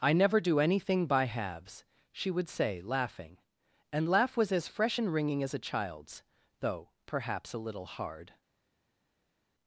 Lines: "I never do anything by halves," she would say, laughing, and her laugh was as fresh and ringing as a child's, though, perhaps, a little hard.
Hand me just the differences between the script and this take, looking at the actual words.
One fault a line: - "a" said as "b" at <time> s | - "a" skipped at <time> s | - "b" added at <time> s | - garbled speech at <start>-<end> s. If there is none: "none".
- "her" skipped at 4.1 s